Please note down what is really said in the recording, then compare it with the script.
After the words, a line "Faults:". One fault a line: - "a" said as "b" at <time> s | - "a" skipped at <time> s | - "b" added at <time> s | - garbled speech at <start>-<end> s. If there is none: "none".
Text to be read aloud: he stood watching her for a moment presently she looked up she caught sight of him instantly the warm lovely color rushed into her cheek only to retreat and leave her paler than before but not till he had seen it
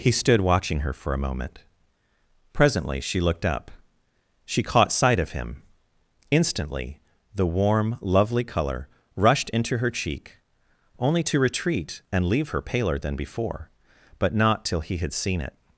he stood watching her for a moment presently she looked up she caught sight of him instantly the warm lovely color rushed into her cheek only to retreat and leave her paler than before but not till he had seen it
Faults:
none